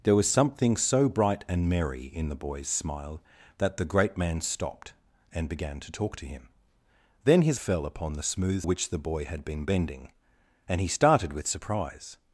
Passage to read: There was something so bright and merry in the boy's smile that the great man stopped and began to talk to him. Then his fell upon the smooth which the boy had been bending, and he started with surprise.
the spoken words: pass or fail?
pass